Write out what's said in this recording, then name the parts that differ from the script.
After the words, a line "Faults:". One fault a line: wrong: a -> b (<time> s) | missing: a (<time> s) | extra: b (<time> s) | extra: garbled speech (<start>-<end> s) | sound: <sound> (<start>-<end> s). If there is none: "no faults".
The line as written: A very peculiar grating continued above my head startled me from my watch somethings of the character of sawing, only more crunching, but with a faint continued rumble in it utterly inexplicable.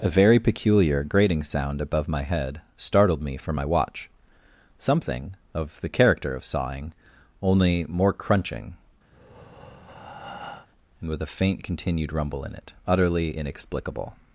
A very peculiar grating sound above my head startled me from my watch something of the character of sawing, only more crunching, and with a faint continued rumble in it utterly inexplicable.
Faults:
wrong: continued -> sound (1.4 s)
wrong: somethings -> something (4.8 s)
sound: breath (9.1-10.7 s)
wrong: but -> and (11.0 s)